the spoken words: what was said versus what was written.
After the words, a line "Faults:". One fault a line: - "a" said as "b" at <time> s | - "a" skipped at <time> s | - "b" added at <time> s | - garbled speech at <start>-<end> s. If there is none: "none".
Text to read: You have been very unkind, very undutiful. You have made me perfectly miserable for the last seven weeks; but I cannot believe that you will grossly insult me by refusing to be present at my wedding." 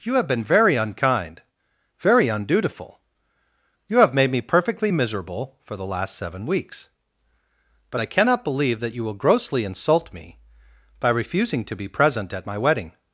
You have been very unkind, very undutiful. You have made me perfectly miserable for the last seven weeks; but I cannot believe that you will grossly insult me by refusing to be present at my wedding."
Faults:
none